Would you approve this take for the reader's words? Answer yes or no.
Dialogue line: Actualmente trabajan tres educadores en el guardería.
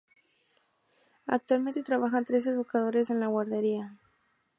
no